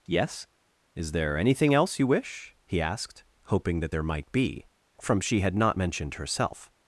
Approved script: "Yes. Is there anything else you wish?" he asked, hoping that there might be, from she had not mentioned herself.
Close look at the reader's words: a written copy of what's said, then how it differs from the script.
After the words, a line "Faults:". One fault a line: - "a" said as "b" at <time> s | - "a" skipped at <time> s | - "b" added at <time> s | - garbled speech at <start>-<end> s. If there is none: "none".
"Yes. Is there anything else you wish?" he asked, hoping that there might be, from she had not mentioned herself.
Faults:
none